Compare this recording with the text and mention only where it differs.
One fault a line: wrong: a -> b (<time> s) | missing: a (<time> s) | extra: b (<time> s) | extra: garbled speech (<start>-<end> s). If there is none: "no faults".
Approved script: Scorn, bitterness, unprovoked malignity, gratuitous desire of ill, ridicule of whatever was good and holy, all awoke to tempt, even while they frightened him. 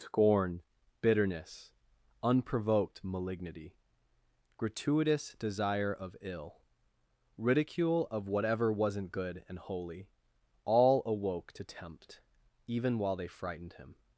wrong: was -> wasn't (8.7 s)